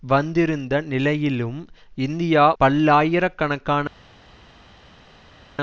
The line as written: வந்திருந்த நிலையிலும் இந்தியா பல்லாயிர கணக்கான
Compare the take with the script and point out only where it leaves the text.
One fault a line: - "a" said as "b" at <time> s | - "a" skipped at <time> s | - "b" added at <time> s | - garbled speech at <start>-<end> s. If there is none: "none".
none